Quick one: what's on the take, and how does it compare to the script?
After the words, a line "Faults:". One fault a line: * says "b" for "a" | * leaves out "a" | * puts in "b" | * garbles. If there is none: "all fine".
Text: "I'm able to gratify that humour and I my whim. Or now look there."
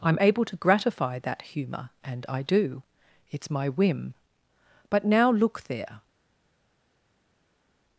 "I'm able to gratify that humour and I do. It's my whim. But now look there."
Faults:
* puts in "do It's"
* says "But" for "Or"